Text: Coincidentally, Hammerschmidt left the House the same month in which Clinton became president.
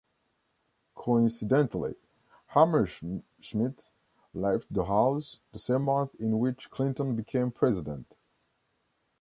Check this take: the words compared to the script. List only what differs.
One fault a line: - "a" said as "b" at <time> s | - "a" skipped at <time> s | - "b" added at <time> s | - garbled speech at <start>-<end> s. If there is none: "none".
none